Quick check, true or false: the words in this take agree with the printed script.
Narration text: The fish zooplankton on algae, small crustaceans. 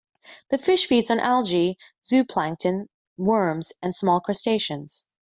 false